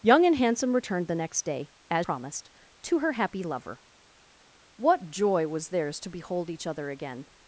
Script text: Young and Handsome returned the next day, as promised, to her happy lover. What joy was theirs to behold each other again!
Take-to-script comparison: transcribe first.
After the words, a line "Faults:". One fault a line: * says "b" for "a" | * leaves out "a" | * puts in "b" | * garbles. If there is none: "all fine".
Young and Handsome returned the next day, as promised, to her happy lover. What joy was theirs to behold each other again!
Faults:
all fine